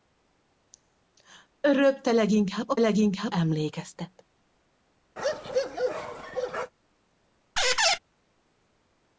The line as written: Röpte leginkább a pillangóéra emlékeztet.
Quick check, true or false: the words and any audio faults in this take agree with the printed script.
false